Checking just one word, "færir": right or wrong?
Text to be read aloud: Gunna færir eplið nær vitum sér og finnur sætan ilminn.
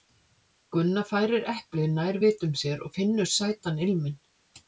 right